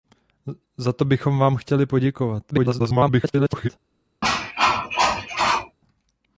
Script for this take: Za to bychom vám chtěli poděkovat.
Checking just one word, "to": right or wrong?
right